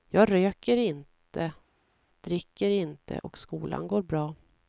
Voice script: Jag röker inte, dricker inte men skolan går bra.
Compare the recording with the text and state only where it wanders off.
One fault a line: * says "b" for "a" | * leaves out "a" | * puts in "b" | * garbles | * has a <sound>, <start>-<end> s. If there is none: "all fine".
* says "och" for "men"